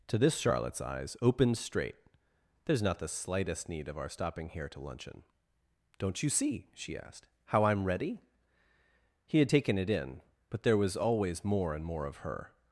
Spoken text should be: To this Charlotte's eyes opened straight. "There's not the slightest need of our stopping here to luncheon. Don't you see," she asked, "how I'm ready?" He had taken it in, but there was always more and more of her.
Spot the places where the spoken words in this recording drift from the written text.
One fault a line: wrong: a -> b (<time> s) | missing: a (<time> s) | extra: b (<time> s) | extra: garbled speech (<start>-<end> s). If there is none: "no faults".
no faults